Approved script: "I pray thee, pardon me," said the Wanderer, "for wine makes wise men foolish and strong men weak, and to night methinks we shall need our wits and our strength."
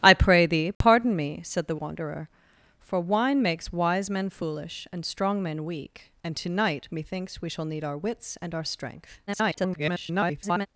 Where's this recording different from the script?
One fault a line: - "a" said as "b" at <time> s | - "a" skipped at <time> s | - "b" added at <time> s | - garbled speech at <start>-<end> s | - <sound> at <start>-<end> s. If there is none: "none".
- dropout at 0.7-0.8 s
- garbled speech at 9.3-10.7 s